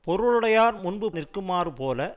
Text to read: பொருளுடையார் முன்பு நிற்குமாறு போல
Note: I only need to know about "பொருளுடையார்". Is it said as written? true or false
true